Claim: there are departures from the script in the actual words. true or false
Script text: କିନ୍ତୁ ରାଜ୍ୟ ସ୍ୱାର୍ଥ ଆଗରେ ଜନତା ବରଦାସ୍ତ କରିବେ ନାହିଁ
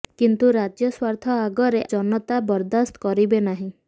false